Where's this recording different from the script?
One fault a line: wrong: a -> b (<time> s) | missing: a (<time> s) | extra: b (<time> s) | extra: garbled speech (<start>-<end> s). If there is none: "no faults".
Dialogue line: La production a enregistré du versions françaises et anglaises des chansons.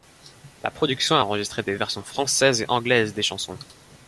wrong: du -> des (1.6 s)